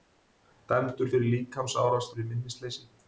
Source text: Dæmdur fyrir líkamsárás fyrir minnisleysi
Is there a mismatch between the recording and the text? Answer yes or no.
no